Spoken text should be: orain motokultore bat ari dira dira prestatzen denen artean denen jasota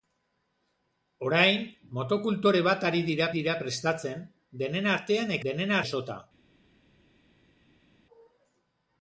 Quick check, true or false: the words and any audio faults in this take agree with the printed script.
true